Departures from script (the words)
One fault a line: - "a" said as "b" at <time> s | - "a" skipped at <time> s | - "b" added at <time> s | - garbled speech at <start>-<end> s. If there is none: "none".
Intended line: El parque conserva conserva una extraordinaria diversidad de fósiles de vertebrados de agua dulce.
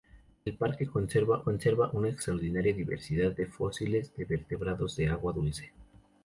none